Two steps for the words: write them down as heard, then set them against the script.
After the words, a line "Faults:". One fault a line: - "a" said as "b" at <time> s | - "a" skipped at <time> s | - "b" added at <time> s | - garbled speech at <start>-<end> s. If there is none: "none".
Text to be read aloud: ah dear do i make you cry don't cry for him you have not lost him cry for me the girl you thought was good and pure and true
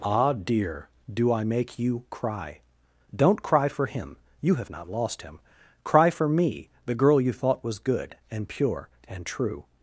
ah dear do i make you cry don't cry for him you have not lost him cry for me the girl you thought was good and pure and true
Faults:
none